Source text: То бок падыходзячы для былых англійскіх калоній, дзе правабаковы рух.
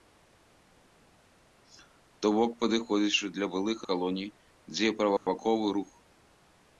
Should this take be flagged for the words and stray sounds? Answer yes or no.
yes